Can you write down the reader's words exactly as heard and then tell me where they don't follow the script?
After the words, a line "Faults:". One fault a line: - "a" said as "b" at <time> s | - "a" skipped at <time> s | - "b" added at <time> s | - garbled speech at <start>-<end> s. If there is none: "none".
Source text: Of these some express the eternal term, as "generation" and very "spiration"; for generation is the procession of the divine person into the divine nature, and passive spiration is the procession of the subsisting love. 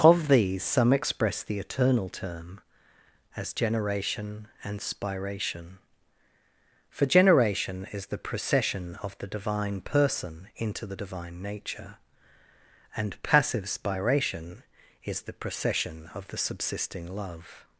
Of these some express the eternal term, as "generation" and "spiration"; for generation is the procession of the divine person into the divine nature, and passive spiration is the procession of the subsisting love.
Faults:
- "very" skipped at 4.8 s